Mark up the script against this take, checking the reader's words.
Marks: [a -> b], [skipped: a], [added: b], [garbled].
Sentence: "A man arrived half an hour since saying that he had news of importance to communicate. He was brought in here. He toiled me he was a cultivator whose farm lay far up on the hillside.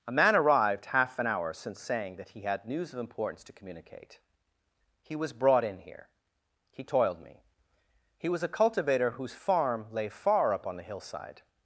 "A man arrived half an hour since saying that he had news of importance to communicate. He was brought in here. He toiled me he was a cultivator whose farm lay far up on the hillside.